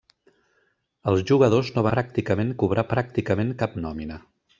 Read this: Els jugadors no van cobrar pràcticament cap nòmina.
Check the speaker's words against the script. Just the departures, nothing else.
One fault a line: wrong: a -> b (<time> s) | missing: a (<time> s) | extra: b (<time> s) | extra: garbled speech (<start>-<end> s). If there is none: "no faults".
wrong: van -> pràcticament (2.0 s)